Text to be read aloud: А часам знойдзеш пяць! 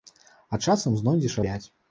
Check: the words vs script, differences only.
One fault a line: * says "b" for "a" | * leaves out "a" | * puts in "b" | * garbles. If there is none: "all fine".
all fine